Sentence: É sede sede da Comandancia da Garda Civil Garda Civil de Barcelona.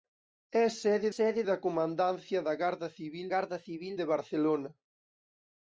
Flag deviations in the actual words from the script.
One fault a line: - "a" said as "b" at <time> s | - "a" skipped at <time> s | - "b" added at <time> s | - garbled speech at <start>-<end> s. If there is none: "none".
none